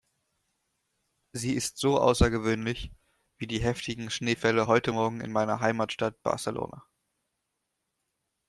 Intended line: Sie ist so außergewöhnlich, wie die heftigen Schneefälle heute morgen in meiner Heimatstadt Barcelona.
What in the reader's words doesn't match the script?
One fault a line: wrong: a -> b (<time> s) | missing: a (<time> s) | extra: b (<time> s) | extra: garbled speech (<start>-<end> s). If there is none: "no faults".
no faults